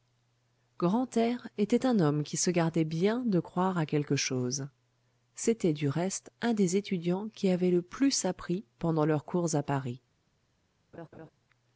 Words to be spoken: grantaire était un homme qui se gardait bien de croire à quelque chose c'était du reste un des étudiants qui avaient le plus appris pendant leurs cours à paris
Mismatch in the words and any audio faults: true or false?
true